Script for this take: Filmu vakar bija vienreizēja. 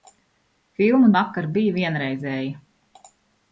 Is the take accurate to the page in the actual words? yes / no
yes